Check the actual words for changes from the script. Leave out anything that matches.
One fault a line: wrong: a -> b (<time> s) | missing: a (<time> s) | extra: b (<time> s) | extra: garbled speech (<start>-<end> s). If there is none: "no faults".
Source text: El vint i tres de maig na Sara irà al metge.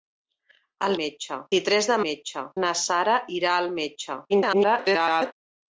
wrong: vint -> metge (1.0 s)
wrong: maig -> metge (2.1 s)
extra: garbled speech (4.3-5.3 s)